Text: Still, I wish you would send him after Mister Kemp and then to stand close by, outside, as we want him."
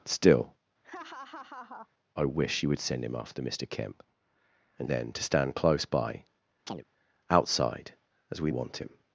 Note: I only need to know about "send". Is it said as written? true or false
true